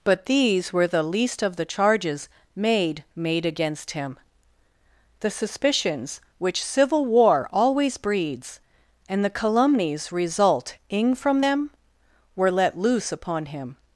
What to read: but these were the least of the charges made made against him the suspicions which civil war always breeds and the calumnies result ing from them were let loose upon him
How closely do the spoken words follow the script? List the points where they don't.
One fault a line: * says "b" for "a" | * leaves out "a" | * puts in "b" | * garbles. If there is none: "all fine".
all fine